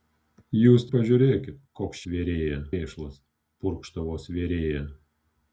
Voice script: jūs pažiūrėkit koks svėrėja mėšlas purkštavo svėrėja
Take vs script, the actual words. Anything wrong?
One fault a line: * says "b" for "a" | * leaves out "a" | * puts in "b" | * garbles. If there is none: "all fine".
all fine